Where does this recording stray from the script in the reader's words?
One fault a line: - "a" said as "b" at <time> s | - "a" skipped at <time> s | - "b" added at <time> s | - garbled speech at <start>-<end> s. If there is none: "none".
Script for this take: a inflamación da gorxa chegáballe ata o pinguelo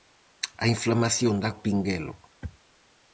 - "gorxa chegáballe ata" skipped at 1.5 s